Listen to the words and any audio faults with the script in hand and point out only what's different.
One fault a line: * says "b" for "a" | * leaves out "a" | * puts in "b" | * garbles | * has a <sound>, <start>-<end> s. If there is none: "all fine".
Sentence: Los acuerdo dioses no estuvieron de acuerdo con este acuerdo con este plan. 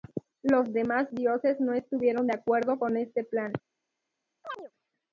* says "demás" for "acuerdo"
* leaves out "acuerdo con este"
* has a chirp, 4.4-4.7 s